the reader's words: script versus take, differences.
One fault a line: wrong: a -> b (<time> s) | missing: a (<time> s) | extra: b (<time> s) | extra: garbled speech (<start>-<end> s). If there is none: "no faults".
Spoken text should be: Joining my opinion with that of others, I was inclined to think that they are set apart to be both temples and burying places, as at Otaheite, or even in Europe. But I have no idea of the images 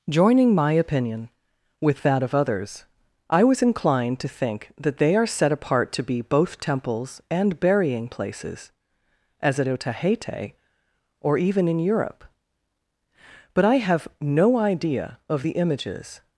no faults